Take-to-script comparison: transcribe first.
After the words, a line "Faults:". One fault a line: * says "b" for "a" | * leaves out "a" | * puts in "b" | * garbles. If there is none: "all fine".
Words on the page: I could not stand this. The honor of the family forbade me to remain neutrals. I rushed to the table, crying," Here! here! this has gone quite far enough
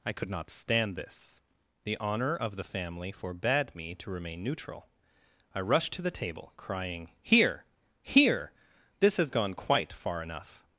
I could not stand this. The honor of the family forbade me to remain neutral. I rushed to the table, crying," Here! here! this has gone quite far enough
Faults:
* says "neutral" for "neutrals"